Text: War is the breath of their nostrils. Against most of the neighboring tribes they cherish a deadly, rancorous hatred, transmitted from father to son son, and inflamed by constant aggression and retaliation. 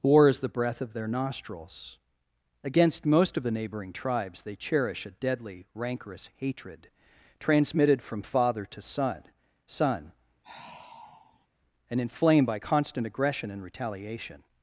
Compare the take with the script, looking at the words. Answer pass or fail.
pass